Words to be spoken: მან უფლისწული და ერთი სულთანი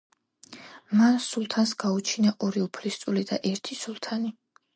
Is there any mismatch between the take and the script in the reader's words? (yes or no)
yes